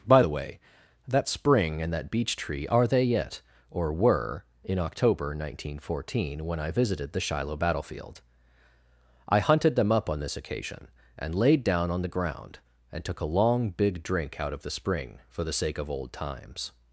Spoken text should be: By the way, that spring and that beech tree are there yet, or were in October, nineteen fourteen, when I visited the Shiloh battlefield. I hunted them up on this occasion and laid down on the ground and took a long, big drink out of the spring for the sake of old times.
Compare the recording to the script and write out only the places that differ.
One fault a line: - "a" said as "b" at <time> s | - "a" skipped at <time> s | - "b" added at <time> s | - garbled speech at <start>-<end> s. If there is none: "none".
- "there" said as "they" at 2.9 s